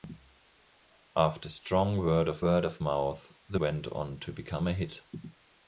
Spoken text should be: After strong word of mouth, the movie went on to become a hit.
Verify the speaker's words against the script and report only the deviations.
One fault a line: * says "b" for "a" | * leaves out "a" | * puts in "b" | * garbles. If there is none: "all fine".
* puts in "word of"
* leaves out "movie"